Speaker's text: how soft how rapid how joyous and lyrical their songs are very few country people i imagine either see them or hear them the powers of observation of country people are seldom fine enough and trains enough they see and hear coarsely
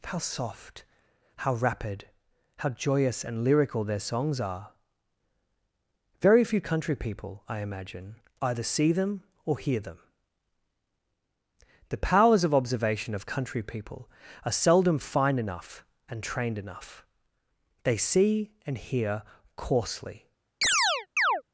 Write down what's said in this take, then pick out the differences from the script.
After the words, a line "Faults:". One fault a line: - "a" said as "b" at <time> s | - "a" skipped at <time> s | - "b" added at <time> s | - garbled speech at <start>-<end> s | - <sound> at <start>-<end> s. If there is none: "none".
how soft how rapid how joyous and lyrical their songs are very few country people i imagine either see them or hear them the powers of observation of country people are seldom fine enough and trained enough they see and hear coarsely
Faults:
- "trains" said as "trained" at 16.2 s
- chirp at 20.6-21.4 s